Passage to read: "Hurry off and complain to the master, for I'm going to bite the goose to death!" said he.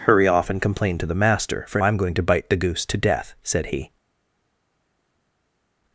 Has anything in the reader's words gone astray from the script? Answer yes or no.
no